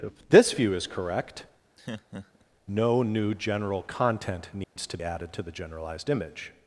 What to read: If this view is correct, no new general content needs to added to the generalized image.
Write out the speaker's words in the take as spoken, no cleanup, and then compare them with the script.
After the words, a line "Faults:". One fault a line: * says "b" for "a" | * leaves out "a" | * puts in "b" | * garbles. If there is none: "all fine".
If this view is correct, no new general content needs to added to the generalized image.
Faults:
all fine